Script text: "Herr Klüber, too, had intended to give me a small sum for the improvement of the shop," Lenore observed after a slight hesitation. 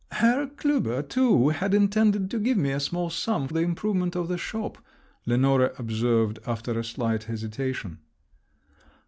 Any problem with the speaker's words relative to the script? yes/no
yes